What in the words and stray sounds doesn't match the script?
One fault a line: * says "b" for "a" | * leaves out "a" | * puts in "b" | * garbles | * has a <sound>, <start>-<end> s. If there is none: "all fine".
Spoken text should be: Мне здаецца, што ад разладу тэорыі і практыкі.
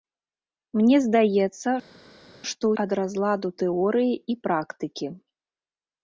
all fine